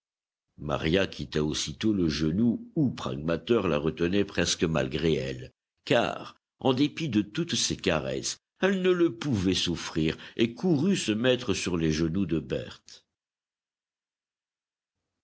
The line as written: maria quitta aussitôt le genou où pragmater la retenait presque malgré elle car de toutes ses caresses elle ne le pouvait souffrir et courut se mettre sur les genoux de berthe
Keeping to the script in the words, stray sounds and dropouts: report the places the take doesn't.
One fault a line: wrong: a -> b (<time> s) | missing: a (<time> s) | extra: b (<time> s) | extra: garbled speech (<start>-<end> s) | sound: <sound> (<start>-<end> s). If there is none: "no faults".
extra: en dépit (6.6 s)